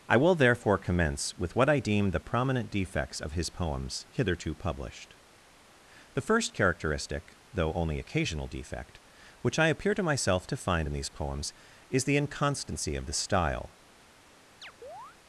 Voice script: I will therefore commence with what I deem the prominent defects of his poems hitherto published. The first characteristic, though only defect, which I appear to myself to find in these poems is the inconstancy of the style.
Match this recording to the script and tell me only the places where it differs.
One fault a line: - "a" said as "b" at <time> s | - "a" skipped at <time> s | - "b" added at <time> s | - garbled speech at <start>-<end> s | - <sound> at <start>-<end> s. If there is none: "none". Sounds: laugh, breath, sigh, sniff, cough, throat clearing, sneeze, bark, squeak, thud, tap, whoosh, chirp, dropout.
- "occasional" added at 8.0 s
- chirp at 14.6-15.2 s